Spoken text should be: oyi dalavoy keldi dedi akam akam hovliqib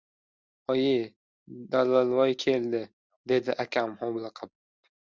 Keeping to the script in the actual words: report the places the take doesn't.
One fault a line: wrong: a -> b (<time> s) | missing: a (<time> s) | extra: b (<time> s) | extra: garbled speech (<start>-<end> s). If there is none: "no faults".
missing: akam (4.0 s)